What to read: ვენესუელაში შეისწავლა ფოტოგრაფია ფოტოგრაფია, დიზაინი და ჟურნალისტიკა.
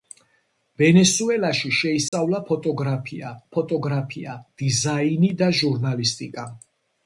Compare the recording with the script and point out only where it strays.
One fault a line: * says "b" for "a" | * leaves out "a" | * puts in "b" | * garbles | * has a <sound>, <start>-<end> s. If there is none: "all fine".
* has a dropout, 2.1-2.1 s